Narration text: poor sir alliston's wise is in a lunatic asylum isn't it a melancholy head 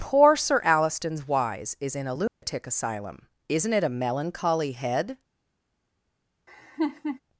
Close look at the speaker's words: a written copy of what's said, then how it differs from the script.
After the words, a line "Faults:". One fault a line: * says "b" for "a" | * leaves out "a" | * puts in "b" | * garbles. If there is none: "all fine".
poor sir alliston's wise is in a lunatic asylum isn't it a melancholy head
Faults:
all fine